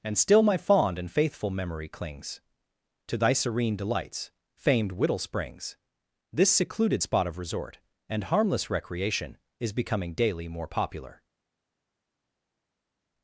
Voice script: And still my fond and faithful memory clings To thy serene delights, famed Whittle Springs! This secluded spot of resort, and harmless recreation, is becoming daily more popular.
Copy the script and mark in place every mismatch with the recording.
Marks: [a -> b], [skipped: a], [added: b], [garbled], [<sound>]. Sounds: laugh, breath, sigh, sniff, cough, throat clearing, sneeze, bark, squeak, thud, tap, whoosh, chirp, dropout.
And still my fond and faithful memory clings To thy serene delights, famed Whittle Springs! This secluded spot of resort, and harmless recreation, is becoming daily more popular.